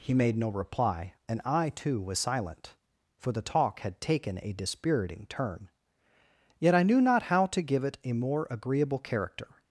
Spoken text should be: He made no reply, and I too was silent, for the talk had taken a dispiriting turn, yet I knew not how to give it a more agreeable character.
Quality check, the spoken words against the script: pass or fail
pass